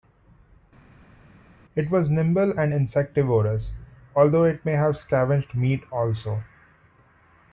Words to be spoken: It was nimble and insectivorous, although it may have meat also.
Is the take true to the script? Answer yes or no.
no